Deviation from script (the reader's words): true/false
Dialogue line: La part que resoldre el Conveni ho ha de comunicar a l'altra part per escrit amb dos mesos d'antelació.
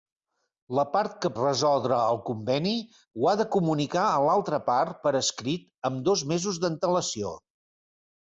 false